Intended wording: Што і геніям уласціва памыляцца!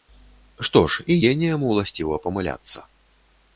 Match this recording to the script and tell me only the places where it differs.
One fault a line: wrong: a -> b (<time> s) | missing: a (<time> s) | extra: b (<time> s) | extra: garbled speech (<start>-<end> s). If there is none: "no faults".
extra: ж (0.9 s)